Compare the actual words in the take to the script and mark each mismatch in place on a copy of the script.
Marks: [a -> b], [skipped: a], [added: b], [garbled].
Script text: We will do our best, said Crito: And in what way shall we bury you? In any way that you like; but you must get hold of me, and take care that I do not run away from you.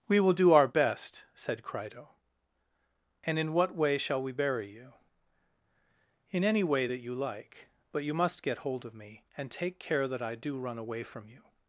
We will do our best, said Crito: And in what way shall we bury you? In any way that you like; but you must get hold of me, and take care that I do [skipped: not] run away from you.